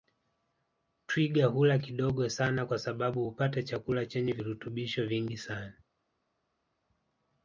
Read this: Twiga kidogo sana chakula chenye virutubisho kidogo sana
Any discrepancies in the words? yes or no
yes